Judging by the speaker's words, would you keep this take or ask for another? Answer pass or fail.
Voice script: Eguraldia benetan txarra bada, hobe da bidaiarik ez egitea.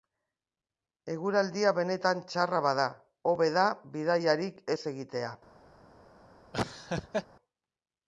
pass